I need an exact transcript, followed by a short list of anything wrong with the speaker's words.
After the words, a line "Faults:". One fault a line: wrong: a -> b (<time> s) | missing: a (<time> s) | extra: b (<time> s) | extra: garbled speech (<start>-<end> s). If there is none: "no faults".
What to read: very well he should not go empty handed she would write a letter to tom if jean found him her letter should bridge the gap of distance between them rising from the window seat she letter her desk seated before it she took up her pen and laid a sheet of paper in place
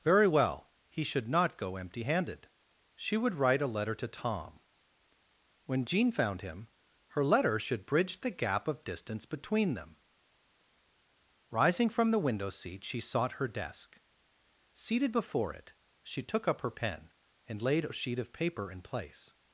very well he should not go empty handed she would write a letter to tom when jean found him her letter should bridge the gap of distance between them rising from the window seat she sought her desk seated before it she took up her pen and laid a sheet of paper in place
Faults:
wrong: if -> when (5.7 s)
wrong: letter -> sought (13.0 s)